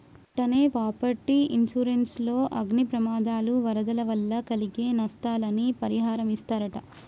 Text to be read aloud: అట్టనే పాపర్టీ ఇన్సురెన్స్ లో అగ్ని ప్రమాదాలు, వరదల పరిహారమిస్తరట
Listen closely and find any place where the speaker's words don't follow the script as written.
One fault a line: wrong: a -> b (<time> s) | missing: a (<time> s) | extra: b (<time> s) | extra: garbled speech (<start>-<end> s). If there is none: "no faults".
extra: వల్ల కలిగే నస్తాలని (4.1 s)